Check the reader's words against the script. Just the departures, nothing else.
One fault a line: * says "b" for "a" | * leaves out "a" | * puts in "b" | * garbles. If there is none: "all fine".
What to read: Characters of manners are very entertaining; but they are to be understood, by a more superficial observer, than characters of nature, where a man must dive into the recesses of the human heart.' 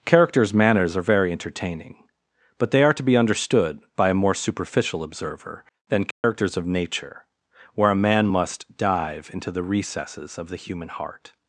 * leaves out "of"